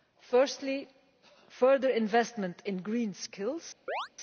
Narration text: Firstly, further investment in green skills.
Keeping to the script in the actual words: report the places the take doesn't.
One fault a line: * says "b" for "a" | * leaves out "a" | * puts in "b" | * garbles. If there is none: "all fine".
all fine